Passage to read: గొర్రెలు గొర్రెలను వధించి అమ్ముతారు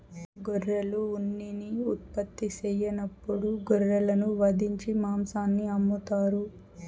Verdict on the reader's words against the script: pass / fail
fail